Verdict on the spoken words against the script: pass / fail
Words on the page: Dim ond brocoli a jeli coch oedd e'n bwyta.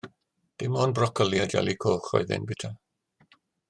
pass